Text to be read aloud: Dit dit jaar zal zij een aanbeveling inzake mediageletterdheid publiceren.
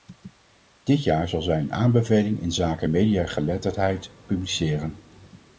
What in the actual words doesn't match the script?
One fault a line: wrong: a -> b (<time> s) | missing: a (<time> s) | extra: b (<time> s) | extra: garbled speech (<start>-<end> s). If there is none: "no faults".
missing: dit (1.0 s)